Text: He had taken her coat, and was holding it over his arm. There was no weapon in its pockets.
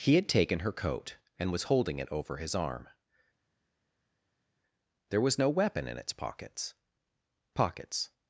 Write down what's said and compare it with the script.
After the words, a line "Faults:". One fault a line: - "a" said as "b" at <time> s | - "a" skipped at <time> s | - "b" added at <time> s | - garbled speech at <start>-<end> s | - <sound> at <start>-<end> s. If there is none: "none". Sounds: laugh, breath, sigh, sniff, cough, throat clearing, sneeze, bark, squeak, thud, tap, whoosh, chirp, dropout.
He had taken her coat, and was holding it over his arm. There was no weapon in its pockets pockets.
Faults:
- "pockets" added at 7.5 s